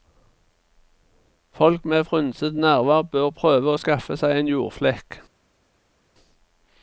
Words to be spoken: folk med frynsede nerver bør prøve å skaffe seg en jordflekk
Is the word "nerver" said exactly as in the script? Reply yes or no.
yes